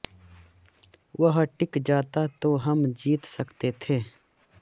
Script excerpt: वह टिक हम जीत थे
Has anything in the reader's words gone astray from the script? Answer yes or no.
yes